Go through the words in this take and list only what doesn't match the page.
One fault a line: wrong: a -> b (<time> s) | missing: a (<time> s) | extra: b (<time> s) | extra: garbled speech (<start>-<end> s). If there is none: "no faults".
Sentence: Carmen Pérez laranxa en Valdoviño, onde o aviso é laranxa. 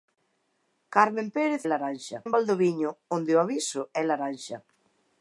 no faults